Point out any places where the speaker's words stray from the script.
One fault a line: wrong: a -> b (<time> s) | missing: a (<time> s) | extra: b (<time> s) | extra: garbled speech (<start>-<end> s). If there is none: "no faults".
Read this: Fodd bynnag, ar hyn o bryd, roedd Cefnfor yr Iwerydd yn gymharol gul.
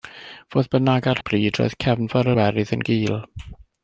missing: hyn (1.2 s)
missing: yr (2.3 s)
missing: gymharol (2.8 s)